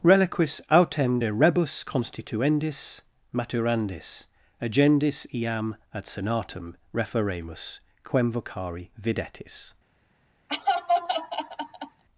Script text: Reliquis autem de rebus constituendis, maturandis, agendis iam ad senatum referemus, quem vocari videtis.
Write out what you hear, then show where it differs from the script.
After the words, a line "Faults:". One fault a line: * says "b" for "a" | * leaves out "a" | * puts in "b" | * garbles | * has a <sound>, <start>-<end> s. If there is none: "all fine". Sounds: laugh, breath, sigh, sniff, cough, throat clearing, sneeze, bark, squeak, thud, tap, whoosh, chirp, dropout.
Reliquis autem de rebus constituendis, maturandis, agendis iam ad senatum referemus, quem vocari videtis.
Faults:
* has a laugh, 10.5-12.0 s